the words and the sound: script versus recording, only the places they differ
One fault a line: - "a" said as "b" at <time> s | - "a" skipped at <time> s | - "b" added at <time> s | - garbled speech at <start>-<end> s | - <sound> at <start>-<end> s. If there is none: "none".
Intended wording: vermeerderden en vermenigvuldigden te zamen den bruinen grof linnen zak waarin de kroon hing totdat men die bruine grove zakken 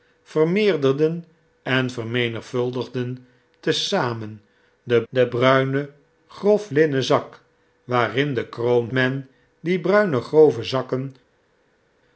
- "den" added at 5.1 s
- "hing totdat" skipped at 8.9 s